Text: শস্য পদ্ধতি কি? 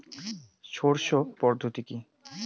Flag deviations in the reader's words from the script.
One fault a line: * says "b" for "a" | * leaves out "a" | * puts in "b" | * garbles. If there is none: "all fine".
all fine